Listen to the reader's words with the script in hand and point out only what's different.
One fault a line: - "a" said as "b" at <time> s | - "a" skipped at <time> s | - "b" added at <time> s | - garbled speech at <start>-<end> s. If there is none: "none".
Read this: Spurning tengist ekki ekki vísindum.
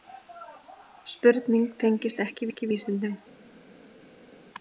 none